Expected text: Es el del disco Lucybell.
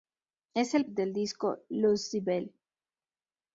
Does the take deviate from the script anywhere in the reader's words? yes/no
no